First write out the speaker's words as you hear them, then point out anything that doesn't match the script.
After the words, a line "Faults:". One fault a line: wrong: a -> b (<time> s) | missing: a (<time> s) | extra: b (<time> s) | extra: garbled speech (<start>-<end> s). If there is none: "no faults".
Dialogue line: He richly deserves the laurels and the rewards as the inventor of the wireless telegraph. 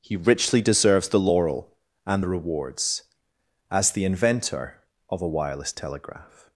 He richly deserves the laurel and the rewards as the inventor of a wireless telegraph.
Faults:
wrong: laurels -> laurel (1.2 s)
wrong: the -> a (5.2 s)